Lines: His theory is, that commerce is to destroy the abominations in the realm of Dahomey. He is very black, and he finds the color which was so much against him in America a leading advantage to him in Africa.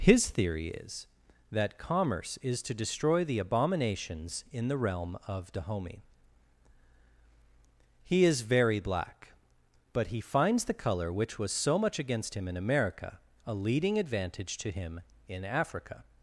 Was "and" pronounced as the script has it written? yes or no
no